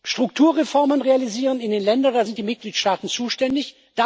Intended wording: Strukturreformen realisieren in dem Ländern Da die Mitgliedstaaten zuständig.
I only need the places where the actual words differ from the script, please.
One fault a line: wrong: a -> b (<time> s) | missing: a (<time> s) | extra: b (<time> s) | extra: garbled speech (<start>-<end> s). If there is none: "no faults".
wrong: dem -> den (1.7 s)
extra: sind (2.2 s)